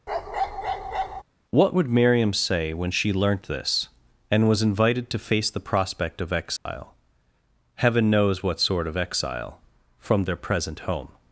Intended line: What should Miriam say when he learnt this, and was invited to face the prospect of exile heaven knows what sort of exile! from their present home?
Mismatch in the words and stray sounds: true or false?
true